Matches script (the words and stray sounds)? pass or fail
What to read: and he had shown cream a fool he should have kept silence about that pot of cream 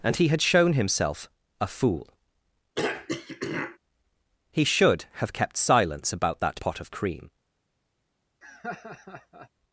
fail